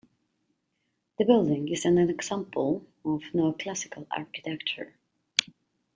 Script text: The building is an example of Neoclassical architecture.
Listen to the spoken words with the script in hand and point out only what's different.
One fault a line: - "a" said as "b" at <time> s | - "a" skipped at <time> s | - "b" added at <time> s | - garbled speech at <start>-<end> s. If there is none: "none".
none